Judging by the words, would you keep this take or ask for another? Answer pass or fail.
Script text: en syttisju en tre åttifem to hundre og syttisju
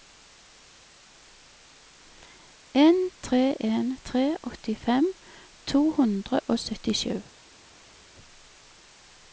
fail